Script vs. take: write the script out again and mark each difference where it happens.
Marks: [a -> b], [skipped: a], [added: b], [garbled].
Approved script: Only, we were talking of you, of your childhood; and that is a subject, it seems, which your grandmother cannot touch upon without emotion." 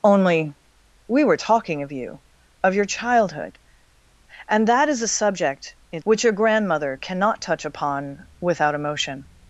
Only, we were talking of you, of your childhood; and that is a subject, it [skipped: seems,] which your grandmother cannot touch upon without emotion."